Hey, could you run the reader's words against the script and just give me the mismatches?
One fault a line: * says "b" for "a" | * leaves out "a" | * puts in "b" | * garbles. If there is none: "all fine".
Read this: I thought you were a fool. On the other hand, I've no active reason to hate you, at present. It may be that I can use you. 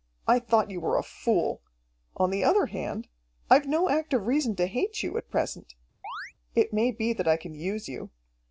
all fine